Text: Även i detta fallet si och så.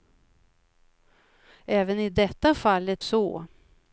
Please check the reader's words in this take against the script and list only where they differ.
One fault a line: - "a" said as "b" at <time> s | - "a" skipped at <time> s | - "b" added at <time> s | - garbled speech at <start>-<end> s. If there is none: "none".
- "si och" skipped at 3.0 s